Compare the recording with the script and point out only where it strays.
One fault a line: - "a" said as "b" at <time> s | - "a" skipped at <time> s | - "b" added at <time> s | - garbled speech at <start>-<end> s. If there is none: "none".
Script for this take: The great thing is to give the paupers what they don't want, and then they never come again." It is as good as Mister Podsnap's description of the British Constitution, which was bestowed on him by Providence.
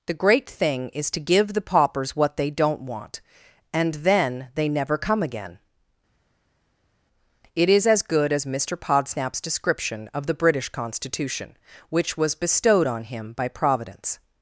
none